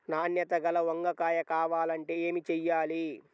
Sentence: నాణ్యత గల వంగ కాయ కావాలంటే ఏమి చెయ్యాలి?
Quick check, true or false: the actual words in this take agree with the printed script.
true